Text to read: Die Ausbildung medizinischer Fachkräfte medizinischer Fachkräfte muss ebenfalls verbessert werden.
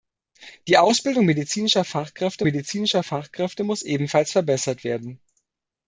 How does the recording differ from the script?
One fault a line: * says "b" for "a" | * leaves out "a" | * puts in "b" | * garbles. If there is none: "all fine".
all fine